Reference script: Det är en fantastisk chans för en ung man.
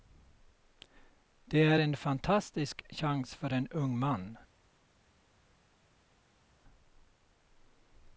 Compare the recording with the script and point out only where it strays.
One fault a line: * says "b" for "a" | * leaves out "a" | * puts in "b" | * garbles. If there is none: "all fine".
all fine